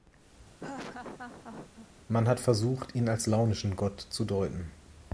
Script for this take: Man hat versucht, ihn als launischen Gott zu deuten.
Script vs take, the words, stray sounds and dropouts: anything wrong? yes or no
yes